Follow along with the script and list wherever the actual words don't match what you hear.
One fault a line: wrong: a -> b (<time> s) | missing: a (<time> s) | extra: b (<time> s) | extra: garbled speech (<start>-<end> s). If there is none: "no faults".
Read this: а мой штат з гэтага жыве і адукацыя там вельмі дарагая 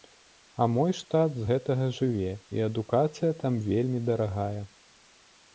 no faults